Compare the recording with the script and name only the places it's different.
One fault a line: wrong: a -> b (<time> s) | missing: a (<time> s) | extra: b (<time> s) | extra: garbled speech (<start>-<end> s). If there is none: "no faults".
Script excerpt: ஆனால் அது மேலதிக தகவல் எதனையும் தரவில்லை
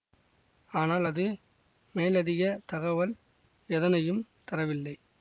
no faults